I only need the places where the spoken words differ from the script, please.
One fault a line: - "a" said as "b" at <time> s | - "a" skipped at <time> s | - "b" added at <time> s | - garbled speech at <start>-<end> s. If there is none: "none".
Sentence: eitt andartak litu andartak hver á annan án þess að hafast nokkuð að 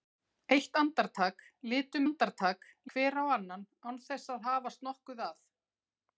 none